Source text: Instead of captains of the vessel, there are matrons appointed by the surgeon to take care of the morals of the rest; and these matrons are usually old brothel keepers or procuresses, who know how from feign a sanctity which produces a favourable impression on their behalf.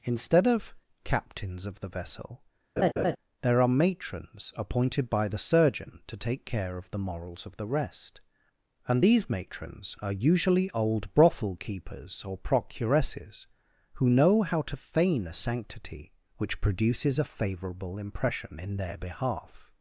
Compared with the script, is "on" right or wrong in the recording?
wrong